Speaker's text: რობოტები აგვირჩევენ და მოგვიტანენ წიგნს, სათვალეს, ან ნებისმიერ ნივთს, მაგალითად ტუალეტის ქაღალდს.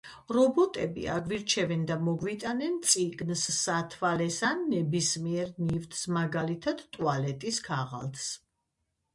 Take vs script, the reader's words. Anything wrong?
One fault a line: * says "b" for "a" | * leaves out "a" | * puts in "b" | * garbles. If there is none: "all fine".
all fine